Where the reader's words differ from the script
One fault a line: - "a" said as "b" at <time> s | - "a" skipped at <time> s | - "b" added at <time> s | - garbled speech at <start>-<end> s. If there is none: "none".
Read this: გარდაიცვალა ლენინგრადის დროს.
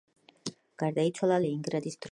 none